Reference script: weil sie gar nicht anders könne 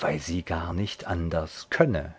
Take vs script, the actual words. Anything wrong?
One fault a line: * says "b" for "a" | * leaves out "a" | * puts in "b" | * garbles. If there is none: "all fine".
all fine